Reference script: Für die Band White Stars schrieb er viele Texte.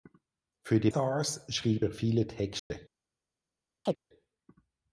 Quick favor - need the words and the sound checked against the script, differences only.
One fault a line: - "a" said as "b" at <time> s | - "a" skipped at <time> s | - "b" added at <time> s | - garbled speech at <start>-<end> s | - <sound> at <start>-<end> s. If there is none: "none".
- "Band White" skipped at 0.9 s
- dropout at 2.6-2.7 s
- chirp at 3.9-4.0 s